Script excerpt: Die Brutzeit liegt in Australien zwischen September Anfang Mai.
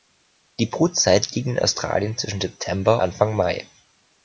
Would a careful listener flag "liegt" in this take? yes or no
no